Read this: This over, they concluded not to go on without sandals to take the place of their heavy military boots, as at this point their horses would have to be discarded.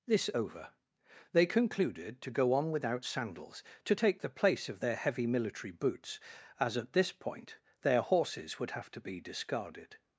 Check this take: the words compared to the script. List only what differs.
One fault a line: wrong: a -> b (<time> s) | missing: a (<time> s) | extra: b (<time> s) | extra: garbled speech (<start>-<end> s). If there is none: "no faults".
missing: not (2.2 s)